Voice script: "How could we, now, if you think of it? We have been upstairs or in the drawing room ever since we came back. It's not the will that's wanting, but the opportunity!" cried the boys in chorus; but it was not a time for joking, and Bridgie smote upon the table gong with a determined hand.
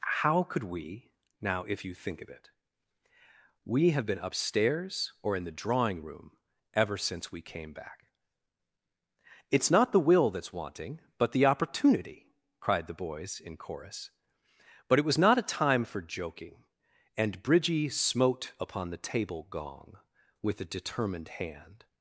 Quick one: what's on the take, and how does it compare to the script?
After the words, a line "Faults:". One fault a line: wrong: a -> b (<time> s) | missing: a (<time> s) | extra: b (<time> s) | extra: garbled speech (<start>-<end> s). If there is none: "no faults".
"How could we, now, if you think of it? We have been upstairs or in the drawing room ever since we came back. It's not the will that's wanting, but the opportunity!" cried the boys in chorus; but it was not a time for joking, and Bridgie smote upon the table gong with a determined hand.
Faults:
no faults